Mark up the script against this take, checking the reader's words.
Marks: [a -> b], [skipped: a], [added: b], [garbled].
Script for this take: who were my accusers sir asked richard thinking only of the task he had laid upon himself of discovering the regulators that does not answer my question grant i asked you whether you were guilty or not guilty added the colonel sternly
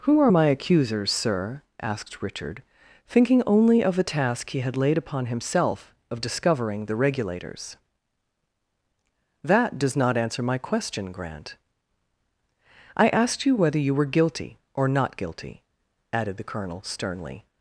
who [were -> are] my accusers sir asked richard thinking only of the task he had laid upon himself of discovering the regulators that does not answer my question grant i asked you whether you were guilty or not guilty added the colonel sternly